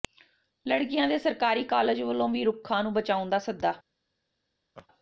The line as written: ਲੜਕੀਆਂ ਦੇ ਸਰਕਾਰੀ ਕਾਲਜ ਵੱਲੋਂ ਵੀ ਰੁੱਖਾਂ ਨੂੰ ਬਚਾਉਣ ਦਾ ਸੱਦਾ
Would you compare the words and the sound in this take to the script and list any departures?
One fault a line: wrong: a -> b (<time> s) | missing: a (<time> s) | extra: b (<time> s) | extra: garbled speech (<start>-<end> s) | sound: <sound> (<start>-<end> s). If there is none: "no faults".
sound: laugh (4.8-4.9 s)